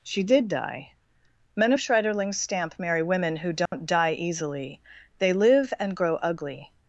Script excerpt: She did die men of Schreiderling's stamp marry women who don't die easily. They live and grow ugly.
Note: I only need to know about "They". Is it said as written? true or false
true